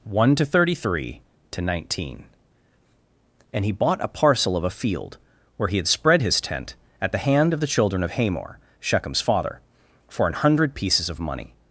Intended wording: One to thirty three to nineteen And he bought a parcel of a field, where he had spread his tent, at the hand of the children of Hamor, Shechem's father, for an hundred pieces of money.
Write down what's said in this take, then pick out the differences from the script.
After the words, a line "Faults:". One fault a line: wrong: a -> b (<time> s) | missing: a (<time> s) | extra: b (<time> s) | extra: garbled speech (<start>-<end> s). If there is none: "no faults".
One to thirty three to nineteen And he bought a parcel of a field, where he had spread his tent, at the hand of the children of Hamor, Shechem's father, for an hundred pieces of money.
Faults:
no faults